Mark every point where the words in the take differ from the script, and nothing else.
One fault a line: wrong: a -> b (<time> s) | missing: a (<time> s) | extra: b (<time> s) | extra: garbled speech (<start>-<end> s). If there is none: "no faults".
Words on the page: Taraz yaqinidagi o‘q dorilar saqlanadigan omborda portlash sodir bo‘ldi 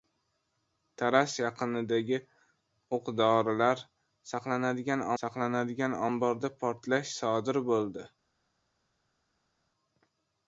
extra: saqlanadigan (5.2 s)